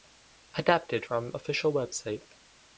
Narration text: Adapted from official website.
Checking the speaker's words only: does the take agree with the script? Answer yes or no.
yes